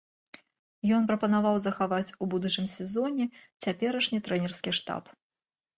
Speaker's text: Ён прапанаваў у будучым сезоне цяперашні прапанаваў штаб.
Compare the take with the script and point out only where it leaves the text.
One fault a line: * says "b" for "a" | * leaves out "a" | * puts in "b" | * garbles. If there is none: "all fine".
* puts in "захаваць"
* says "трэнерскі" for "прапанаваў"